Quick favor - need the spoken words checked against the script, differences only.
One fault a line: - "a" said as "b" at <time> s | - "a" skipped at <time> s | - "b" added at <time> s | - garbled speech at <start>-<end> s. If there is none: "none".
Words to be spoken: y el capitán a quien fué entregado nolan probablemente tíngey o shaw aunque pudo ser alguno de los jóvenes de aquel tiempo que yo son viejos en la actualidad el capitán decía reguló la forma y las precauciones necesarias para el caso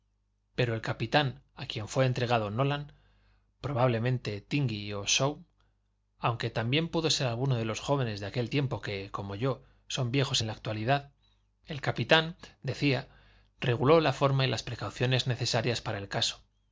- "y" said as "pero" at 0.6 s
- "también" added at 6.5 s
- "como" added at 9.1 s